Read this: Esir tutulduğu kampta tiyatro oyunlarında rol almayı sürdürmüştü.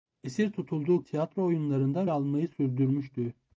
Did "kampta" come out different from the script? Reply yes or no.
yes